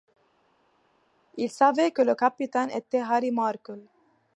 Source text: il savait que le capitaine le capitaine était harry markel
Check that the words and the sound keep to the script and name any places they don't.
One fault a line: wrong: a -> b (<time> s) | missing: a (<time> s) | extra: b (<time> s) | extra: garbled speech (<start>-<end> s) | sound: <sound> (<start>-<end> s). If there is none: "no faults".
missing: le capitaine (2.7 s)